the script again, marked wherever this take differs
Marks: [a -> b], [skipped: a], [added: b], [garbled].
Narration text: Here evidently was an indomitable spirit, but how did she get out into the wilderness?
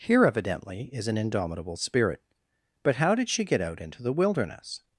Here evidently [was -> is] an indomitable spirit, but how did she get out into the wilderness?